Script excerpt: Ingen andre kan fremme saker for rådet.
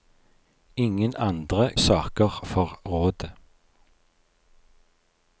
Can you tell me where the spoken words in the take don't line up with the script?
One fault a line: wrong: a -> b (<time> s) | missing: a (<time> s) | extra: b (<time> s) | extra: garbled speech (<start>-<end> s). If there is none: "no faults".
missing: kan fremme (1.8 s)